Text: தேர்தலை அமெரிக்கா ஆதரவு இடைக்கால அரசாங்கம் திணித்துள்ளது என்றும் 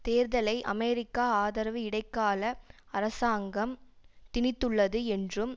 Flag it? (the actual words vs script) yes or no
no